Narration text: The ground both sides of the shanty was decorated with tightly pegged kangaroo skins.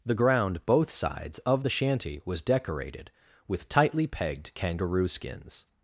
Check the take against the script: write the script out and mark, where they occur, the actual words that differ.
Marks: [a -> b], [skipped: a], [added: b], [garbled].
The ground both sides of the shanty was decorated with tightly pegged kangaroo skins.